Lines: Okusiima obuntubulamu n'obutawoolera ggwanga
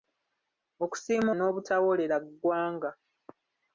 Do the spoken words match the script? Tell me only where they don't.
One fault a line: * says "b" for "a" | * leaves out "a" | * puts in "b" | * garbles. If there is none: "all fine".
* leaves out "obuntubulamu"